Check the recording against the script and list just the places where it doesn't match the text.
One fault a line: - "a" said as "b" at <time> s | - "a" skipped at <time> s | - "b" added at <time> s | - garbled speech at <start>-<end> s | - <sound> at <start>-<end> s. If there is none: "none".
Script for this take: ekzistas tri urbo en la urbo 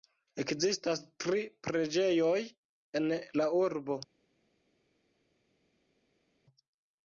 - "urbo" said as "preĝejoj" at 1.7 s